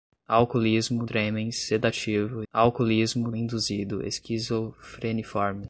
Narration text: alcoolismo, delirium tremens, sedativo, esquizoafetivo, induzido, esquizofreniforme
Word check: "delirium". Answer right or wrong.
wrong